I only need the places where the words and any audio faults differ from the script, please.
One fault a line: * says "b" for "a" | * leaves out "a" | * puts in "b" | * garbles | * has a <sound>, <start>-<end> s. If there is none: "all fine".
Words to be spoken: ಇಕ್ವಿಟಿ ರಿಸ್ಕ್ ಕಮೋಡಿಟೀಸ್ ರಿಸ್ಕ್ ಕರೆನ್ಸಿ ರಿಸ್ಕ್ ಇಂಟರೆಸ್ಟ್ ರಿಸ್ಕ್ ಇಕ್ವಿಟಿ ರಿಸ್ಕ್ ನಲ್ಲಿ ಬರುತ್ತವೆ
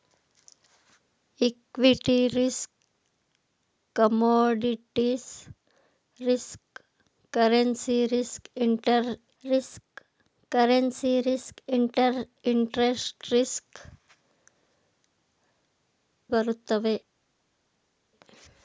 * says "ರಿಸ್ಕ್ ಕರೆನ್ಸಿ" for "ಇಂಟರೆಸ್ಟ್"
* says "ಇಂಟರೆಸ್ಟ್" for "ಇಕ್ವಿಟಿ"
* leaves out "ನಲ್ಲಿ"